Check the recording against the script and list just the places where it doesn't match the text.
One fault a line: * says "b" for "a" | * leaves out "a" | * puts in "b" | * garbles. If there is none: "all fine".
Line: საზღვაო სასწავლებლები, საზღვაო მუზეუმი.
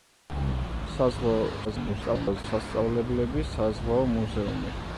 * garbles